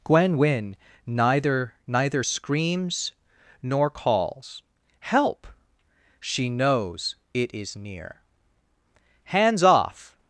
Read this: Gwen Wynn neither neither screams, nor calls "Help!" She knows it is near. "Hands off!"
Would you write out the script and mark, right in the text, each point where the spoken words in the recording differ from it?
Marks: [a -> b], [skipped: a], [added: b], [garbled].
Gwen Wynn neither neither screams, nor calls "Help!" She knows it is near. "Hands off!"